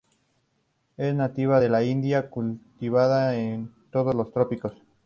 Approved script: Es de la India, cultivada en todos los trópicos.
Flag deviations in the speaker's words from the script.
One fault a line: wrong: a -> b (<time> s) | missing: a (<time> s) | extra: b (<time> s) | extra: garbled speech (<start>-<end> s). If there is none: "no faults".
extra: nativa (1.1 s)